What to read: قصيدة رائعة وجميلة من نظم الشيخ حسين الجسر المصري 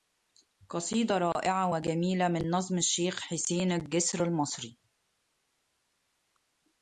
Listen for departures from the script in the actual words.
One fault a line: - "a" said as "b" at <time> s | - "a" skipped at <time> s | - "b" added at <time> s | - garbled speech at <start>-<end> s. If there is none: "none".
none